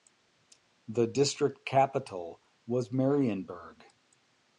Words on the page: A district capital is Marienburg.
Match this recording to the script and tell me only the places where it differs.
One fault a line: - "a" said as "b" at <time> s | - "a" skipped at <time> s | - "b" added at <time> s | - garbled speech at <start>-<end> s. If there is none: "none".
- "A" said as "The" at 0.9 s
- "is" said as "was" at 2.6 s